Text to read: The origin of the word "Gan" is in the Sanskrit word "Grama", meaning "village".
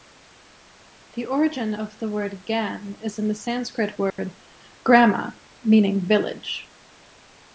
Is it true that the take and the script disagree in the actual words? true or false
false